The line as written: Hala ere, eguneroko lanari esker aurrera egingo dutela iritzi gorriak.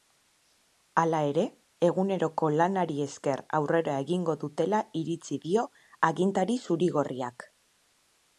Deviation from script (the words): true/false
true